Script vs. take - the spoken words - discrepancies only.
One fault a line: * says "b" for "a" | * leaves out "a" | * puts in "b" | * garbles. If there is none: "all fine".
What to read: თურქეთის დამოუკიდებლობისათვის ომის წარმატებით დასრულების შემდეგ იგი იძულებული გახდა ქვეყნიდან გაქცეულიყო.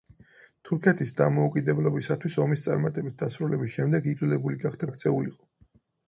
* leaves out "იგი"
* leaves out "ქვეყნიდან"